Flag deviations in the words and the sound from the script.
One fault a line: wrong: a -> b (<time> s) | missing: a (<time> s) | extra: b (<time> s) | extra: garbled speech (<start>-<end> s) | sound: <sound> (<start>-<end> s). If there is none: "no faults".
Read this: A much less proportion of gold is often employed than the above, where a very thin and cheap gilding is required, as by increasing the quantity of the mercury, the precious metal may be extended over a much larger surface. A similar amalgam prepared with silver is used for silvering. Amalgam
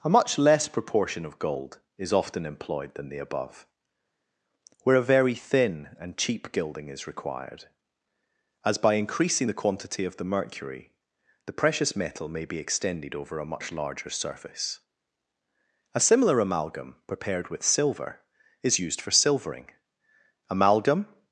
no faults